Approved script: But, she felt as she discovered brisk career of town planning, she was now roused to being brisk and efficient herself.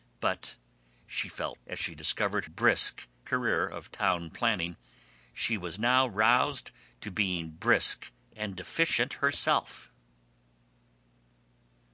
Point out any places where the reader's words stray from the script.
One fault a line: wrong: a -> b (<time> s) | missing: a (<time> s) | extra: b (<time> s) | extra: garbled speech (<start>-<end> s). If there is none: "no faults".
no faults